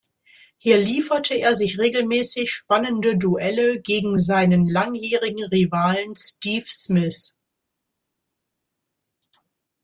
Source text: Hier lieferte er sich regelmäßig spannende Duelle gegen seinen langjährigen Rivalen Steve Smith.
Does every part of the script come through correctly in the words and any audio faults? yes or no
yes